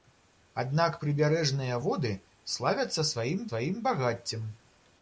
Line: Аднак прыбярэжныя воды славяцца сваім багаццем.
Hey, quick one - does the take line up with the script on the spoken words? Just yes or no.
no